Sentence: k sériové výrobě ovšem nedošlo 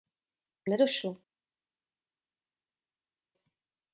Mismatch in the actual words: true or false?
true